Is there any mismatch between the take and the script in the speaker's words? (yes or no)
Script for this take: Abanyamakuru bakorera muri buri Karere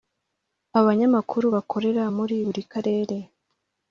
no